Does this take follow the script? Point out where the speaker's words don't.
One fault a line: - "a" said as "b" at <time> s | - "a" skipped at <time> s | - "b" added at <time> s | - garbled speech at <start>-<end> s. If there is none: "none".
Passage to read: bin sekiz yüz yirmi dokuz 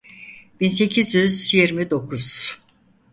none